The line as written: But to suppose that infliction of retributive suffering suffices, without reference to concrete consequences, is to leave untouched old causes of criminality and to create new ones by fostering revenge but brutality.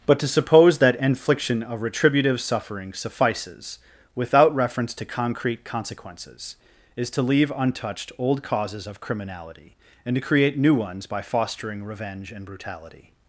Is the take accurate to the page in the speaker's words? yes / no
no